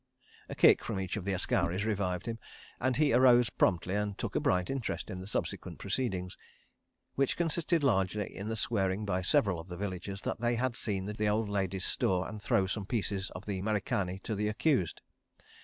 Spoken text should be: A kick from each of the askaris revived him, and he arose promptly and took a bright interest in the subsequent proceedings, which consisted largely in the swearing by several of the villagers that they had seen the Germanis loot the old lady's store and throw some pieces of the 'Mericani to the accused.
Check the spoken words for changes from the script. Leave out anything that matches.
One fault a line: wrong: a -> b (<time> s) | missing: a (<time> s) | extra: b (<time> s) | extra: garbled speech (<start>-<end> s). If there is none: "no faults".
missing: Germanis loot (11.1 s)